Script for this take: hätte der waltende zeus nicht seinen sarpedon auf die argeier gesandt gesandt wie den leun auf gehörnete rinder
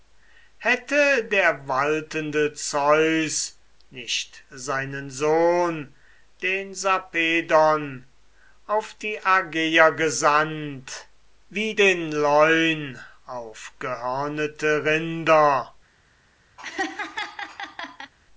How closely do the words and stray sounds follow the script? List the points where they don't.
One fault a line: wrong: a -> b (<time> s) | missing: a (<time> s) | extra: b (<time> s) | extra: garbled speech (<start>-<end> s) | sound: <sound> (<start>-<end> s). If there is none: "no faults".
extra: sohn den (5.1 s)
missing: gesandt (11.1 s)
sound: laugh (16.6-18.1 s)